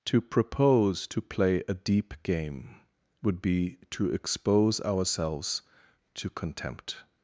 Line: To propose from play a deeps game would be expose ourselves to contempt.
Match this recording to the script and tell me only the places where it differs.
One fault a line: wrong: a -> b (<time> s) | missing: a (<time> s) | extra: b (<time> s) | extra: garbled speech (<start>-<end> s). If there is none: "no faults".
wrong: from -> to (1.1 s)
wrong: deeps -> deep (1.7 s)
extra: to (3.9 s)